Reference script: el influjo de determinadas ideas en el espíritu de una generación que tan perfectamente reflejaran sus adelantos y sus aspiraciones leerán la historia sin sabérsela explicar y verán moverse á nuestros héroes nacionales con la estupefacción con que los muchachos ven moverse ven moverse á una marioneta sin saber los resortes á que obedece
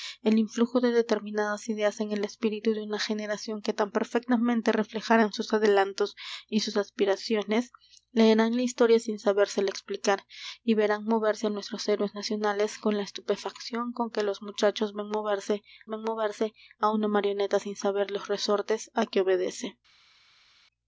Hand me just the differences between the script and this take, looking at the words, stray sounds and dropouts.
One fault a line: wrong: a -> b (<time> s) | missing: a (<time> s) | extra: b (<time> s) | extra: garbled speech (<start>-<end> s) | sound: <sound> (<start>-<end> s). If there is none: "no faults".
no faults